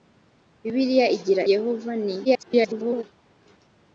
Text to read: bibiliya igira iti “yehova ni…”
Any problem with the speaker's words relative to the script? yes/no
yes